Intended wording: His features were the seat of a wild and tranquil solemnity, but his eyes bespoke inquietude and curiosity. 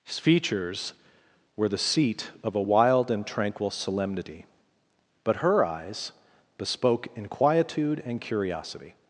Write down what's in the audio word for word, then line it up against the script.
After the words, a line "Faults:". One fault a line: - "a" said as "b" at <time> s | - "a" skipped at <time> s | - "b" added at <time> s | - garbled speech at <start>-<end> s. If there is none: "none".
His features were the seat of a wild and tranquil solemnity, but her eyes bespoke inquietude and curiosity.
Faults:
- "his" said as "her" at 5.4 s